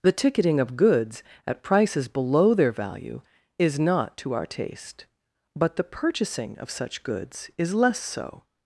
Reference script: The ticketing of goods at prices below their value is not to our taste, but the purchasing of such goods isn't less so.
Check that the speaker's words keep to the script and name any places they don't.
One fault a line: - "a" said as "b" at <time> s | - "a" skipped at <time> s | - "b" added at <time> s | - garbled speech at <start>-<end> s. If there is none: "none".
- "isn't" said as "is" at 7.6 s